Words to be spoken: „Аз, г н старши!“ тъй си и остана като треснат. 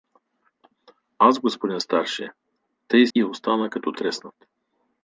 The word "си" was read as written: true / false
false